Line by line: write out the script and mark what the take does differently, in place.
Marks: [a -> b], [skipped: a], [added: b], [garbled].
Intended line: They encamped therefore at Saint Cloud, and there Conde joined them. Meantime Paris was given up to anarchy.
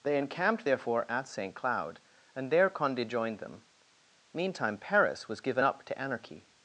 They encamped therefore at Saint Cloud, and there Conde joined them. Meantime Paris was given up to anarchy.